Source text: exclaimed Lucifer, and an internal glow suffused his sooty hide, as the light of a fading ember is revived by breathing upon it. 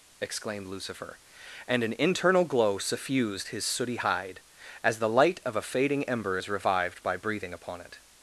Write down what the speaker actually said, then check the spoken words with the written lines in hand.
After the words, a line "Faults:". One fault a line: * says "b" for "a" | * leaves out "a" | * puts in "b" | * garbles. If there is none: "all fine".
exclaimed Lucifer, and an internal glow suffused his sooty hide, as the light of a fading ember is revived by breathing upon it.
Faults:
all fine